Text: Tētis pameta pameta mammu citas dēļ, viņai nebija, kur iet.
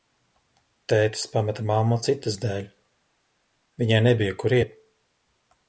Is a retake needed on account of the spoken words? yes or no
yes